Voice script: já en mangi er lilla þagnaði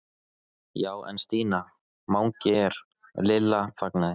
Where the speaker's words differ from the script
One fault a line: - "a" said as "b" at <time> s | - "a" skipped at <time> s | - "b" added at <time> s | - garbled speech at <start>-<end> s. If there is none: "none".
- "stína" added at 1.2 s